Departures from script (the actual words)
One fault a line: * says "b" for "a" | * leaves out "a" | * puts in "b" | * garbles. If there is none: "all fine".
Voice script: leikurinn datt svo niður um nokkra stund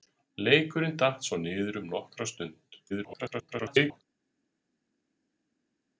* garbles